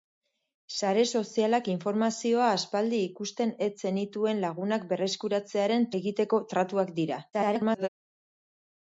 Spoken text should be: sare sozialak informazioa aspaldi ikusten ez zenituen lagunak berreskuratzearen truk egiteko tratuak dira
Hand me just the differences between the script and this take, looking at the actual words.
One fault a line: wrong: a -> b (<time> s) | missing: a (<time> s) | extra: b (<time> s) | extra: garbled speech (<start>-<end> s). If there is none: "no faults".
missing: truk (5.9 s)
extra: garbled speech (7.3-7.9 s)